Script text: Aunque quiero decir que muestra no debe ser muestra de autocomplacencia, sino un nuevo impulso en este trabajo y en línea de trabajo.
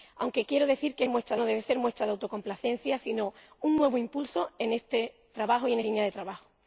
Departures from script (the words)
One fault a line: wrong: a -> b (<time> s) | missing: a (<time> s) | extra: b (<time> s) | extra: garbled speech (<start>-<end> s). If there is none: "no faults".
no faults